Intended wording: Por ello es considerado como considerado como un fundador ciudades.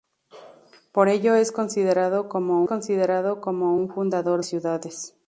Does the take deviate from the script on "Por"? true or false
false